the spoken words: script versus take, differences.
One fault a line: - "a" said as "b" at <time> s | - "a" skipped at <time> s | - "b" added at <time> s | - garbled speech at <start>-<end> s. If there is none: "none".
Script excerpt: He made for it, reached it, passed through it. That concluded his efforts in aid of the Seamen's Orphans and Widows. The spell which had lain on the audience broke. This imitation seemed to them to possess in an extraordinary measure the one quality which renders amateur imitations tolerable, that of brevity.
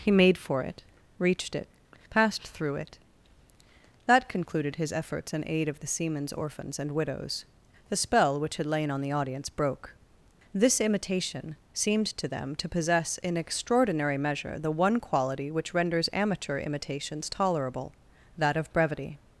- "an" skipped at 13.4 s